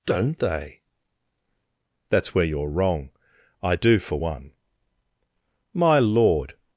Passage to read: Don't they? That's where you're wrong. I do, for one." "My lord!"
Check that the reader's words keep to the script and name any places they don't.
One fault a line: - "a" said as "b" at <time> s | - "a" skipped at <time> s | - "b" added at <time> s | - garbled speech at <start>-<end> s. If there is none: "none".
none